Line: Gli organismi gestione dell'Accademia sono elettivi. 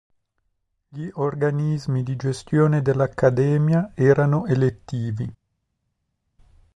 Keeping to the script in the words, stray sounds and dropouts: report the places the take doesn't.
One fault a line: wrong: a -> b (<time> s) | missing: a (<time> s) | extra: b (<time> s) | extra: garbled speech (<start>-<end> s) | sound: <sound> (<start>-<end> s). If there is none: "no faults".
extra: di (2.0 s)
wrong: sono -> erano (3.9 s)